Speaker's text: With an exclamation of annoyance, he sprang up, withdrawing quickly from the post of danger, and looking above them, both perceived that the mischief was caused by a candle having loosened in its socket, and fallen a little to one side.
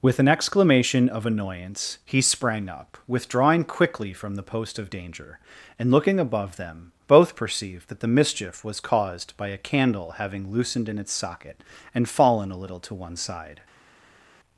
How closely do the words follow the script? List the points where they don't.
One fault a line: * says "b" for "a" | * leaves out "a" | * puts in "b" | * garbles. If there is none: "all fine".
all fine